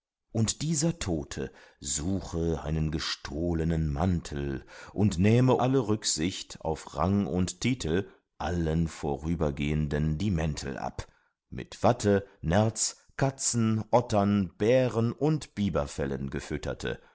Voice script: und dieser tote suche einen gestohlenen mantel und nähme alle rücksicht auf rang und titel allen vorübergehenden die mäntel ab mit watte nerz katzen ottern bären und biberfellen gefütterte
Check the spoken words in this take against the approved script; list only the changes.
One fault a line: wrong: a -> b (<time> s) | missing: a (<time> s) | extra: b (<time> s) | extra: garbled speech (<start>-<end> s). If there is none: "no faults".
no faults